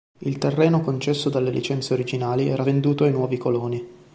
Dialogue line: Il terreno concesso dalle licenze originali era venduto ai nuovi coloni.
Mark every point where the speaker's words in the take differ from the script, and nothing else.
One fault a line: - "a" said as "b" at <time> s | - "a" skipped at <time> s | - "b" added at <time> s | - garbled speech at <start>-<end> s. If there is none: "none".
none